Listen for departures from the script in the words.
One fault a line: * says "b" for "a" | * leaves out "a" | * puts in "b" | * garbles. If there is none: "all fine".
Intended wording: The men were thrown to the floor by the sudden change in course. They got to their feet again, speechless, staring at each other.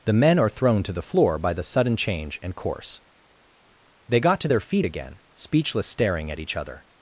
* says "are" for "were"
* says "and" for "in"